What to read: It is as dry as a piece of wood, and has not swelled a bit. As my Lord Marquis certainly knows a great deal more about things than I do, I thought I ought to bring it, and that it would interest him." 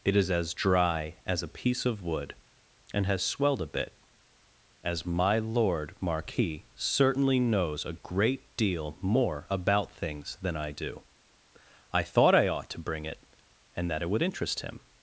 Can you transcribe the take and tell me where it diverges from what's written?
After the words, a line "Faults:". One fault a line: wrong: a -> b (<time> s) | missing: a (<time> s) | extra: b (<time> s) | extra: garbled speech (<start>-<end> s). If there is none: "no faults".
It is as dry as a piece of wood, and has swelled a bit. As my Lord Marquis certainly knows a great deal more about things than I do, I thought I ought to bring it, and that it would interest him."
Faults:
missing: not (3.2 s)